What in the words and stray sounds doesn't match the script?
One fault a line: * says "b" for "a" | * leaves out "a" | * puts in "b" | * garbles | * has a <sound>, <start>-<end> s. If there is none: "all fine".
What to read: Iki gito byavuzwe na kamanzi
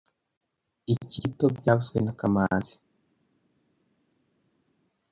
all fine